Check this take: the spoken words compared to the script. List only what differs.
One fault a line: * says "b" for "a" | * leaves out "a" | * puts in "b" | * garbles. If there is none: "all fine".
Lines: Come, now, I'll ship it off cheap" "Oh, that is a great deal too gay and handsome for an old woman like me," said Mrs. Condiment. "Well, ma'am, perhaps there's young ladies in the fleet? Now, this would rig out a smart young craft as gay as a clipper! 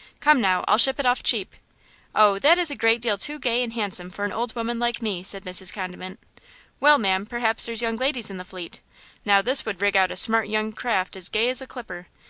all fine